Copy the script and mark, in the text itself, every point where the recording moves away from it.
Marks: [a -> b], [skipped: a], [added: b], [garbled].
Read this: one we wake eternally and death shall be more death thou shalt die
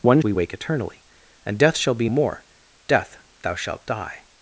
one we wake eternally and death shall be more death thou shalt die